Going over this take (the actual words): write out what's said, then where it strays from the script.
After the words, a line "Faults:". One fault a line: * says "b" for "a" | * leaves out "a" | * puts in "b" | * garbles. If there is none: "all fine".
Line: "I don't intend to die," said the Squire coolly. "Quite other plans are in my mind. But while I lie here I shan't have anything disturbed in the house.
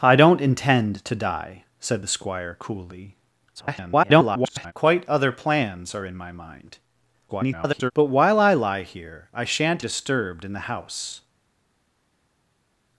"I don't intend to die," said the Squire coolly. [garbled] "Quite other plans are in my mind. [garbled] But while I lie here I shan't disturbed in the house.
Faults:
* garbles
* garbles
* leaves out "have anything"